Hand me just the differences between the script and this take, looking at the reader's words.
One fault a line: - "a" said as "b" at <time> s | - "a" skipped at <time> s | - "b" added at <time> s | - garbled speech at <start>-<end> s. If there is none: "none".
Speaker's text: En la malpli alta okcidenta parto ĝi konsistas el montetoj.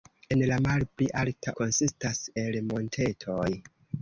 - "okcidenta parto ĝi" skipped at 1.5 s